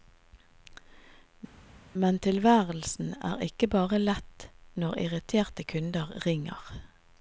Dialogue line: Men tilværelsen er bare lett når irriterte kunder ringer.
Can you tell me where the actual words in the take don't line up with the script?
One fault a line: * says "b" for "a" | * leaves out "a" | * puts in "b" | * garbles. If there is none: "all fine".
* puts in "ikke"